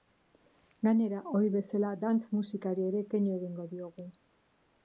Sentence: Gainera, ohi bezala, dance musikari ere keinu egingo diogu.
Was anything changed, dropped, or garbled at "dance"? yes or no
no